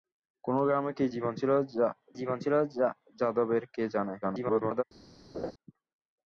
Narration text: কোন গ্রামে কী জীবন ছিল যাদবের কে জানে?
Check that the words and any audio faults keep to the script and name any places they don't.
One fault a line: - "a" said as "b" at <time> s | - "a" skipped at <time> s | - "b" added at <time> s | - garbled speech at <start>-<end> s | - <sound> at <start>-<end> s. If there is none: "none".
- "জীবন ছিল" added at 2.2 s
- garbled speech at 4.2-4.8 s
- laugh at 5.3-5.5 s